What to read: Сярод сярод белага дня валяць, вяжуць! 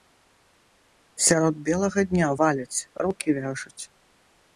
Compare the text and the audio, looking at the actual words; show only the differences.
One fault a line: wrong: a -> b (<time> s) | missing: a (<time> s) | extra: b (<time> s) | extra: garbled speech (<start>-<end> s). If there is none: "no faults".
missing: сярод (1.6 s)
extra: рукі (3.1 s)